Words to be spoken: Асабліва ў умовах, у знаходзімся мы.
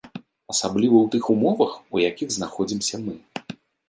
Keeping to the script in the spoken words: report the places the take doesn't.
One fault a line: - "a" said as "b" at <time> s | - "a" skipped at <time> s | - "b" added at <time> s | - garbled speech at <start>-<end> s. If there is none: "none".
- "тых" added at 1.1 s
- "якіх" added at 2.1 s